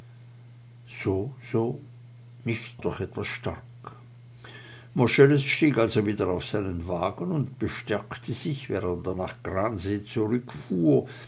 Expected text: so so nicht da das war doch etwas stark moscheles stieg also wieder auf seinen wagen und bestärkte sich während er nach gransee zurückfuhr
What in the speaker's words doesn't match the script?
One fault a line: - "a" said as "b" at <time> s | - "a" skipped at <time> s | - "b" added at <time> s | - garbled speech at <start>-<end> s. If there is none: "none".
- "da das war" skipped at 2.8 s